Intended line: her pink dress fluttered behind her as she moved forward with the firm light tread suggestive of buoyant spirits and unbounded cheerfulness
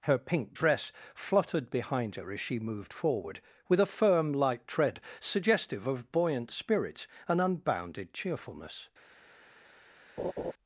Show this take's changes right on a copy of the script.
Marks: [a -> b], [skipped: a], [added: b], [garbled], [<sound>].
her pink dress fluttered behind her as she moved forward with [the -> a] firm light tread suggestive of buoyant spirits and unbounded cheerfulness [laugh]